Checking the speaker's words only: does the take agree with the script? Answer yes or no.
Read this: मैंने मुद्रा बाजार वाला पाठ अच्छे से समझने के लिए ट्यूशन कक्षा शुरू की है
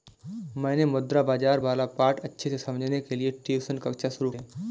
no